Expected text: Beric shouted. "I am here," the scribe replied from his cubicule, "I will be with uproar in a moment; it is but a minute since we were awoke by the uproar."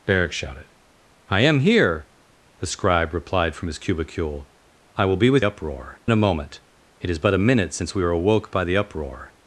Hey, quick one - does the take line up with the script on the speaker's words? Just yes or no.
yes